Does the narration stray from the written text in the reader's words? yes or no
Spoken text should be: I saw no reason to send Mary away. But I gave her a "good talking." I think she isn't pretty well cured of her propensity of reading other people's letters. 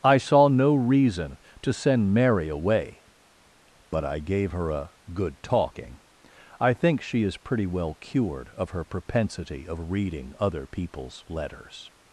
yes